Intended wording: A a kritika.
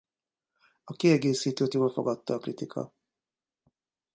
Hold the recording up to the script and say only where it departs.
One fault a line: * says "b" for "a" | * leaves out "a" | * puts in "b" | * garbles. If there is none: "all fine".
* puts in "kiegészítőt jól fogadta"